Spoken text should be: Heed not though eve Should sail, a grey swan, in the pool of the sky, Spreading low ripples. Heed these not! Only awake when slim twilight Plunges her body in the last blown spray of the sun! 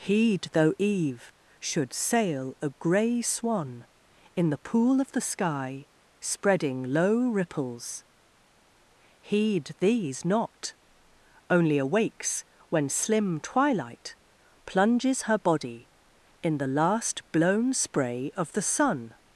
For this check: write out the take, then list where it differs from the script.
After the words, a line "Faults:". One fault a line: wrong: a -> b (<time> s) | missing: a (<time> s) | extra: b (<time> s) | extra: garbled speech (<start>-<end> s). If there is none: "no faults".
Heed though eve Should sail, a grey swan, in the pool of the sky, Spreading low ripples. Heed these not! Only awakes when slim twilight Plunges her body in the last blown spray of the sun!
Faults:
missing: not (0.5 s)
wrong: awake -> awakes (11.8 s)